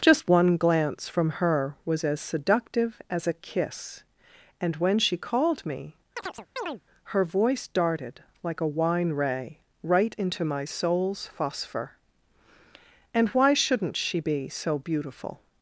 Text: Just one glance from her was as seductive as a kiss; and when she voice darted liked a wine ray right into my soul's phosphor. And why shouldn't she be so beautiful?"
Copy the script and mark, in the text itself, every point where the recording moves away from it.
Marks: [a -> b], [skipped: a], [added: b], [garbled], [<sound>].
Just one glance from her was as seductive as a kiss; and when she [added: called me her] [chirp] voice darted [liked -> like] a wine ray right into my soul's phosphor. And why shouldn't she be so beautiful?"